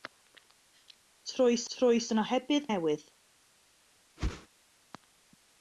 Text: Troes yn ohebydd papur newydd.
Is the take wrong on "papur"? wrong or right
wrong